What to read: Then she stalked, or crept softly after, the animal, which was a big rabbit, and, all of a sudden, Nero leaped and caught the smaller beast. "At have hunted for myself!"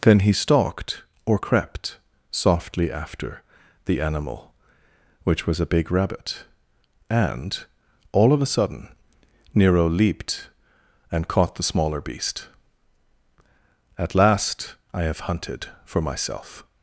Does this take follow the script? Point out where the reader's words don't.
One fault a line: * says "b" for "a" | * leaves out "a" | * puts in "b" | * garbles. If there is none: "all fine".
* says "he" for "she"
* puts in "last I"